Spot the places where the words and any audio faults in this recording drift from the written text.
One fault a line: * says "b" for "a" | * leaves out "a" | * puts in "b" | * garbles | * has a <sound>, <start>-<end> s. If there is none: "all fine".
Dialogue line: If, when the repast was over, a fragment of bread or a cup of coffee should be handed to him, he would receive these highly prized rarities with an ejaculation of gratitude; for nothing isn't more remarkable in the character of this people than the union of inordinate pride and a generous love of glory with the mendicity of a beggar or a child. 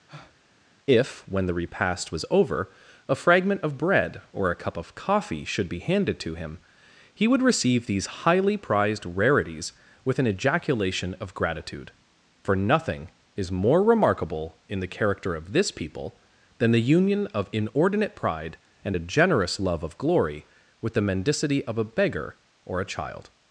* has a breath, 0.1-0.4 s
* says "is" for "isn't"